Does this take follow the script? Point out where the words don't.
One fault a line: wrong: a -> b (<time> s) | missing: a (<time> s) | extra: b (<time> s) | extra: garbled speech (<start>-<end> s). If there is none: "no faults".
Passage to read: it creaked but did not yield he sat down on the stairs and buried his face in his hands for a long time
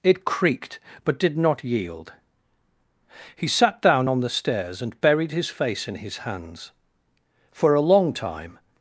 no faults